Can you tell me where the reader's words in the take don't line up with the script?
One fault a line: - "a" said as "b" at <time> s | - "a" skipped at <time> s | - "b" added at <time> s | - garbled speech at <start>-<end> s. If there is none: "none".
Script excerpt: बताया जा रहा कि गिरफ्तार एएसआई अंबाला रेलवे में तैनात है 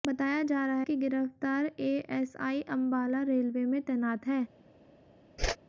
none